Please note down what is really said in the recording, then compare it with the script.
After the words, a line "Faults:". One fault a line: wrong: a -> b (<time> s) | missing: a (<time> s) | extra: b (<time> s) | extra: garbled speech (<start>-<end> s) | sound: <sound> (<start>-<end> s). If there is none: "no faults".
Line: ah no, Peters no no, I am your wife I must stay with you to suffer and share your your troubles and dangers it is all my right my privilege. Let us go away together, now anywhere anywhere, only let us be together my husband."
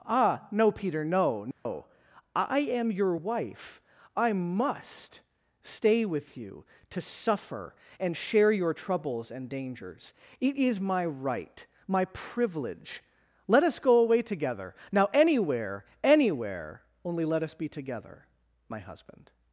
ah no, Peter no no, I am your wife I must stay with you to suffer and share your troubles and dangers it is my right my privilege. Let us go away together, now anywhere anywhere, only let us be together my husband."
Faults:
wrong: Peters -> Peter (0.7 s)
sound: dropout (1.5-1.7 s)
missing: your (8.7 s)
missing: all (10.8 s)